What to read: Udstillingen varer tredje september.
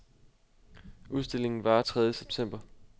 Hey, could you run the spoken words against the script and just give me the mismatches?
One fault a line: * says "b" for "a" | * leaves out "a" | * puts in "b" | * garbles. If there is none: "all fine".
all fine